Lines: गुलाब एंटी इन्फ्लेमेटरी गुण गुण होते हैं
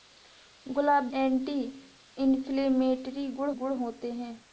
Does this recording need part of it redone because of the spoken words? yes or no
no